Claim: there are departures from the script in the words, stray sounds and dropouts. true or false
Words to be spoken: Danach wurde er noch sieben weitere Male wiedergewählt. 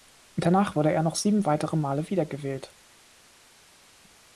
false